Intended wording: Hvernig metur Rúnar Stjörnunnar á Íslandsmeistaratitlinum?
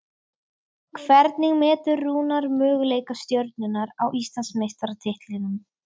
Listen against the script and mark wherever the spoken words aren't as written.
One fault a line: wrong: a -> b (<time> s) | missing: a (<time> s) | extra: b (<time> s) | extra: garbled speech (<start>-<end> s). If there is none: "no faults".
extra: möguleika (2.6 s)